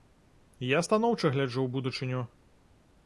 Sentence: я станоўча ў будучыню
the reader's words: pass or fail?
fail